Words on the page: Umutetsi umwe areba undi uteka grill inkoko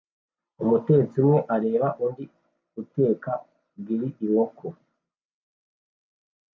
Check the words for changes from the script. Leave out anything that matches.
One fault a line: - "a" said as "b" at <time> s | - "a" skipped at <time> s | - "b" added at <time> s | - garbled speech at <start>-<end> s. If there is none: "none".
none